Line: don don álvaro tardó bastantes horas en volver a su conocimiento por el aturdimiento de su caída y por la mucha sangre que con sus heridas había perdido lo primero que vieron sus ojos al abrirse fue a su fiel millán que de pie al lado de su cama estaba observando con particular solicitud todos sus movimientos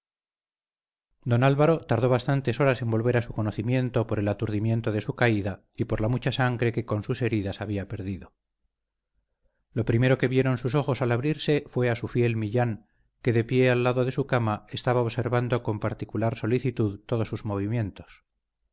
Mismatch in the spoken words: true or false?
true